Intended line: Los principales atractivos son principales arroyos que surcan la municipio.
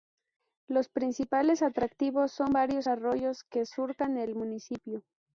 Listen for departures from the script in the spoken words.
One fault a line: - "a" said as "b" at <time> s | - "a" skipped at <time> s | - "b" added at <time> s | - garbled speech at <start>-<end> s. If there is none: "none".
- "principales" said as "varios" at 2.5 s
- "la" said as "el" at 4.2 s